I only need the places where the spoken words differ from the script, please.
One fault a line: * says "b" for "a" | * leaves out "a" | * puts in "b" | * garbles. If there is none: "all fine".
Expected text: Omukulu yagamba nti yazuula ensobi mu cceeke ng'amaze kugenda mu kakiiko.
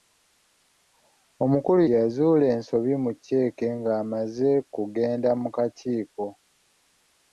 * leaves out "yagamba nti"